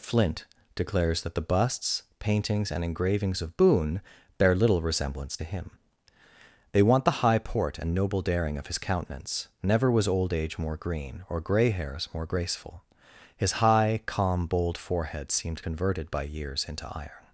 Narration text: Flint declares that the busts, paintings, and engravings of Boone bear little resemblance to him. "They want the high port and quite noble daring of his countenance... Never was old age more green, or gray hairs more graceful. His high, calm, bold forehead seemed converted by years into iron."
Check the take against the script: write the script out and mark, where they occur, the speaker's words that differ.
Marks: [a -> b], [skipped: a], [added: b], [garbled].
Flint declares that the busts, paintings, and engravings of Boone bear little resemblance to him. "They want the high port and [skipped: quite] noble daring of his countenance... Never was old age more green, or gray hairs more graceful. His high, calm, bold forehead seemed converted by years into iron."